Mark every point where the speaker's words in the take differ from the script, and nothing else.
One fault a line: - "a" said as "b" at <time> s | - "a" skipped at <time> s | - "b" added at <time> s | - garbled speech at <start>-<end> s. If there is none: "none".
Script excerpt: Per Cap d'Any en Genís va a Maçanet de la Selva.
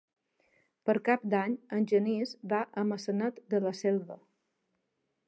none